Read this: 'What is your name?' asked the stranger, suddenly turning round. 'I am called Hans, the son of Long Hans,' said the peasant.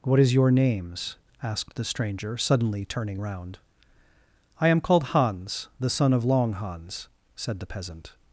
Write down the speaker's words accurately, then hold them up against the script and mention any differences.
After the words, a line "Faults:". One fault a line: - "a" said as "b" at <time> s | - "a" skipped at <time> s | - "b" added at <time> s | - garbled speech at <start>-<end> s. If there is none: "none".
'What is your names?' asked the stranger, suddenly turning round. 'I am called Hans, the son of Long Hans,' said the peasant.
Faults:
- "name" said as "names" at 0.5 s